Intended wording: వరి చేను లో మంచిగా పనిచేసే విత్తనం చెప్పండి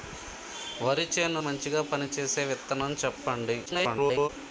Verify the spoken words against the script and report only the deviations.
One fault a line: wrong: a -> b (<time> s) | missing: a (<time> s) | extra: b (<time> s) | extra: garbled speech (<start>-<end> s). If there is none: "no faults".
missing: లో (1.4 s)
extra: garbled speech (3.7-4.3 s)